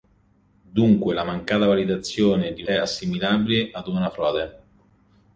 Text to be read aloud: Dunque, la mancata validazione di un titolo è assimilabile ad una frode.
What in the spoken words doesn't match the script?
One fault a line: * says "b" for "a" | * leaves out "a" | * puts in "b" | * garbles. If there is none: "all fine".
* leaves out "un titolo"